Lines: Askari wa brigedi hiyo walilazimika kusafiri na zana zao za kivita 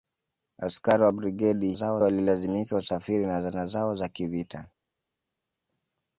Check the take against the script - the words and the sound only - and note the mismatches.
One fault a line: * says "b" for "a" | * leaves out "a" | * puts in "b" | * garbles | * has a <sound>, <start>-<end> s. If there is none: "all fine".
* says "zao" for "hiyo"